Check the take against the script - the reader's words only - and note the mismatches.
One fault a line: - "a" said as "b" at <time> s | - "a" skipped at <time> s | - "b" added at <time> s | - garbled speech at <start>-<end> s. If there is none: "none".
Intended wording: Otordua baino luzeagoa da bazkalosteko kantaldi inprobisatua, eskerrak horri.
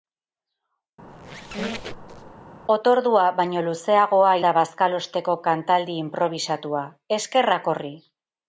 none